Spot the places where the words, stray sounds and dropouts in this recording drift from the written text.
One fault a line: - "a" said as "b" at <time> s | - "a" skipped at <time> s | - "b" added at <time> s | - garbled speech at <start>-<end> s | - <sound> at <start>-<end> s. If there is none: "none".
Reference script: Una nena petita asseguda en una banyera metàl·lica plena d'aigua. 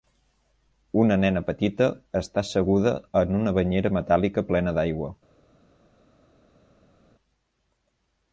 - "està" added at 2.2 s